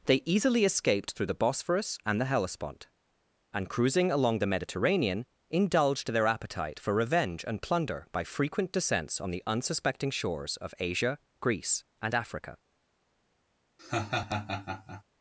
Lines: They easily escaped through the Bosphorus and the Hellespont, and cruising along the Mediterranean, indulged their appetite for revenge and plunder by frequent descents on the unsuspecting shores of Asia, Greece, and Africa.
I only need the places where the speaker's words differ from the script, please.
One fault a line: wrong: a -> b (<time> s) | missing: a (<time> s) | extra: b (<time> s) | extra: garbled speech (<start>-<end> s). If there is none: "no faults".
no faults